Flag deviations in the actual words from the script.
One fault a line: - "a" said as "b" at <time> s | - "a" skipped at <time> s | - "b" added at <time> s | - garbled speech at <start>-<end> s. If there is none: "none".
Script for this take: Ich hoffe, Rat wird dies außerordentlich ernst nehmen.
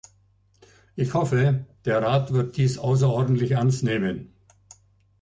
- "der" added at 1.9 s